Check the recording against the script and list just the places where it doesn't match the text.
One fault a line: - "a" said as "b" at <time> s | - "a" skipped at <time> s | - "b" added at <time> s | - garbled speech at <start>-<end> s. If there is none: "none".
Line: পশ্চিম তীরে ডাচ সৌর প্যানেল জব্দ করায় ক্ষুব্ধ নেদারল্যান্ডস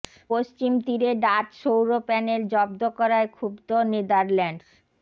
none